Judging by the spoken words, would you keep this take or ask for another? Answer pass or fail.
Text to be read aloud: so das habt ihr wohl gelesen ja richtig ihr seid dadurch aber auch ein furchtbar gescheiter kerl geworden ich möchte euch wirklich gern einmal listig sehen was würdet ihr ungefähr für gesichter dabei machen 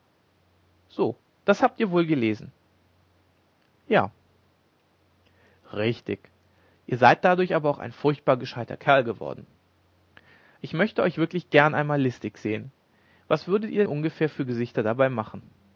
pass